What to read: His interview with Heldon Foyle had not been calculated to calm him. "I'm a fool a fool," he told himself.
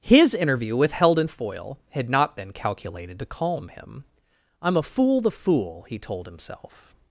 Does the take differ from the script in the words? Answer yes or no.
yes